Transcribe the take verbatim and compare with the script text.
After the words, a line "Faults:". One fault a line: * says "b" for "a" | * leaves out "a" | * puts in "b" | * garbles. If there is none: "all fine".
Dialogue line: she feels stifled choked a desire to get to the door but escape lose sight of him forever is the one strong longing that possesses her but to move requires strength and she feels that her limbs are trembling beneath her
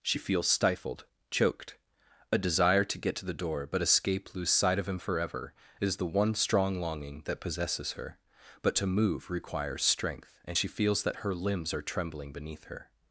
she feels stifled choked a desire to get to the door but escape lose sight of him forever is the one strong longing that possesses her but to move requires strength and she feels that her limbs are trembling beneath her
Faults:
all fine